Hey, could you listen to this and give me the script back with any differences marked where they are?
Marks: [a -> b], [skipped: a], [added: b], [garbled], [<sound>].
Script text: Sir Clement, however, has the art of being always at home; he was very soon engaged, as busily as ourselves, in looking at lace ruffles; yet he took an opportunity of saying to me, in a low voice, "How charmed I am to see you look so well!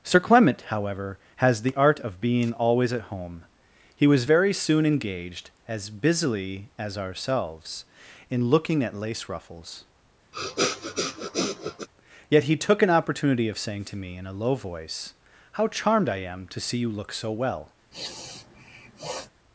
Sir Clement, however, has the art of being always at home; he was very soon engaged, as busily as ourselves, in looking at lace ruffles; [sniff] yet he took an opportunity of saying to me, in a low voice, "How charmed I am to see you look so well! [sniff]